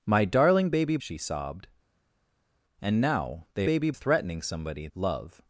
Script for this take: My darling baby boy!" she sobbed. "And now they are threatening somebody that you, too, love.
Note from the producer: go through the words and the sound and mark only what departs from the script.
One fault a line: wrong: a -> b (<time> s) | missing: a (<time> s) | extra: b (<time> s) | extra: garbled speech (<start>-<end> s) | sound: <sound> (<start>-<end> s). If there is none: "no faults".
missing: boy (1.0 s)
wrong: are -> baby (3.6 s)
missing: that you too (4.9 s)